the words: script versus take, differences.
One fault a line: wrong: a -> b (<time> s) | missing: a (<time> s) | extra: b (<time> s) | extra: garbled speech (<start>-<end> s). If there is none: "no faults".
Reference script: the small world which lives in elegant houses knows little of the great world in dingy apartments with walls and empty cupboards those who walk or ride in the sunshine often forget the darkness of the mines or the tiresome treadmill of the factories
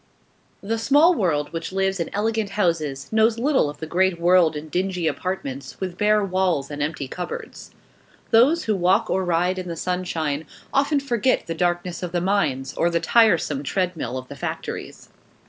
extra: bare (6.0 s)